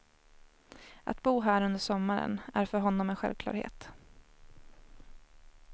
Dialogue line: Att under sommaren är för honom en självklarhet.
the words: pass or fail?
fail